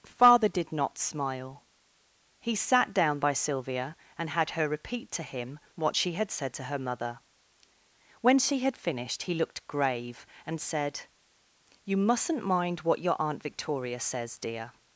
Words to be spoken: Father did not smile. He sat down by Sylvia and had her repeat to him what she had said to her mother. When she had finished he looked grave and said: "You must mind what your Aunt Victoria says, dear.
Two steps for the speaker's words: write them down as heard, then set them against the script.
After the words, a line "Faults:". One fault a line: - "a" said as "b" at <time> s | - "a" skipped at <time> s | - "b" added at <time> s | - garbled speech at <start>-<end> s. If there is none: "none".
Father did not smile. He sat down by Sylvia and had her repeat to him what she had said to her mother. When she had finished he looked grave and said: "You mustn't mind what your Aunt Victoria says, dear.
Faults:
- "must" said as "mustn't" at 12.0 s